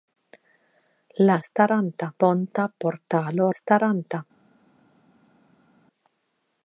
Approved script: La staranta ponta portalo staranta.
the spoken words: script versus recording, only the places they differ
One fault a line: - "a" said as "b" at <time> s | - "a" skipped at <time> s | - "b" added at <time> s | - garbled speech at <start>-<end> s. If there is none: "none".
none